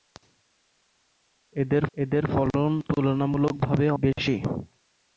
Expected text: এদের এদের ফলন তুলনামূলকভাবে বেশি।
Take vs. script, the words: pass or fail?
pass